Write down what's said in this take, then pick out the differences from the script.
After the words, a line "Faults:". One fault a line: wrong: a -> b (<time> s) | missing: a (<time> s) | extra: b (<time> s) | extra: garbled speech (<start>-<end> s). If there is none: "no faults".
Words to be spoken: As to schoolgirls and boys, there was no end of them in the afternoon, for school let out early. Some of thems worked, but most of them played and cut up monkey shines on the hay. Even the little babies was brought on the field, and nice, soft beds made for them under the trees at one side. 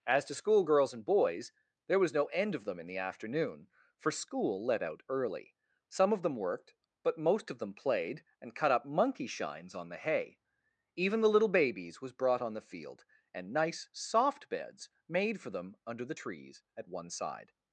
As to schoolgirls and boys, there was no end of them in the afternoon, for school let out early. Some of them worked, but most of them played and cut up monkey shines on the hay. Even the little babies was brought on the field, and nice, soft beds made for them under the trees at one side.
Faults:
wrong: thems -> them (6.2 s)